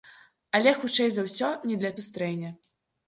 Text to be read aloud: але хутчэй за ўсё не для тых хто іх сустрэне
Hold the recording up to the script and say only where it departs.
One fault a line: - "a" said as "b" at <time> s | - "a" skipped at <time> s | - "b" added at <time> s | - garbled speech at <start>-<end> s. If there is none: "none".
- "тых хто іх" skipped at 1.9 s